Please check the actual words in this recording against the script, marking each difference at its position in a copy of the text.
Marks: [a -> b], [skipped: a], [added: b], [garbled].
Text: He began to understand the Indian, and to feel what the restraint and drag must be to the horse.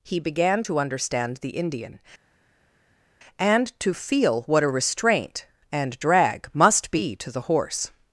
He began to understand the Indian, and to feel what [the -> a] restraint and drag must be to the horse.